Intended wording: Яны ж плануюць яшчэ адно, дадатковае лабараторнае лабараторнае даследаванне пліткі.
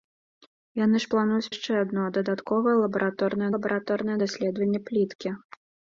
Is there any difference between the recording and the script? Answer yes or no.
no